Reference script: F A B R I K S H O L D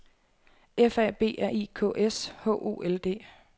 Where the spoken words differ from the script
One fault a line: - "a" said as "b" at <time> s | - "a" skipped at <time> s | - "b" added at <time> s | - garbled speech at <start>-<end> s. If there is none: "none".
none